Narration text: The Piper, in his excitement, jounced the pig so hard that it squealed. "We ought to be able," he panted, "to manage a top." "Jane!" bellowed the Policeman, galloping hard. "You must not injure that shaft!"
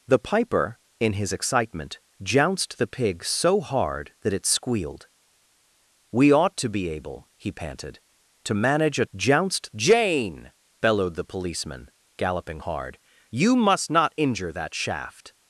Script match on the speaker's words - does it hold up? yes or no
no